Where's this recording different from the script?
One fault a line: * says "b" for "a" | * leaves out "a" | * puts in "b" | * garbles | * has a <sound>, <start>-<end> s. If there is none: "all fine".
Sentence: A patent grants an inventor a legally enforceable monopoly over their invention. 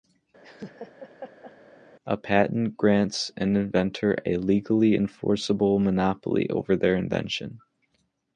* has a laugh, 0.4-1.6 s